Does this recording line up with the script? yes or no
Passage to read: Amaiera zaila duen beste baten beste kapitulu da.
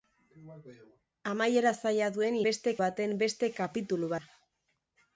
yes